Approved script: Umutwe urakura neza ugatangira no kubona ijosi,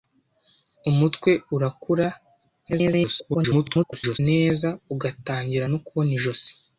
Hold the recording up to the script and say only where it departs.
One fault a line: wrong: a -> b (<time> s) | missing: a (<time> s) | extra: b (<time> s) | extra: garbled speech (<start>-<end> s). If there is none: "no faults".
extra: garbled speech (2.7-4.2 s)